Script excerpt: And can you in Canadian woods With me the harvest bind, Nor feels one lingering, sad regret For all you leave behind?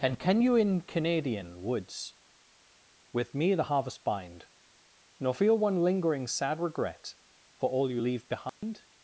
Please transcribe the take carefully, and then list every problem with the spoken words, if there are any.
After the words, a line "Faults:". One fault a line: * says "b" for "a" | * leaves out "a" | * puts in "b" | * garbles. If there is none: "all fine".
And can you in Canadian woods With me the harvest bind, Nor feel one lingering, sad regret For all you leave behind?
Faults:
* says "feel" for "feels"